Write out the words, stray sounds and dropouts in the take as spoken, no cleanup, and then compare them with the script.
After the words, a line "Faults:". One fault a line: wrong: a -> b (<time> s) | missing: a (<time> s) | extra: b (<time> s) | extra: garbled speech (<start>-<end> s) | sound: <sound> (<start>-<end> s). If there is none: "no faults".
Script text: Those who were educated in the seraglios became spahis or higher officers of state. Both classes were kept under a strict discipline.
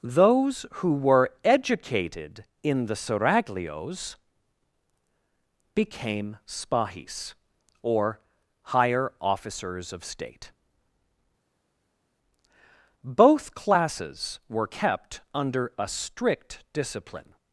Those who were educated in the seraglios became spahis or higher officers of state. Both classes were kept under a strict discipline.
Faults:
no faults